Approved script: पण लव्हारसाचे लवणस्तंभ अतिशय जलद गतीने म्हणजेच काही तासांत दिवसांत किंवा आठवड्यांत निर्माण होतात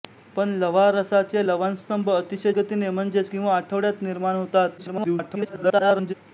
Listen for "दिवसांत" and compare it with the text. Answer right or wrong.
wrong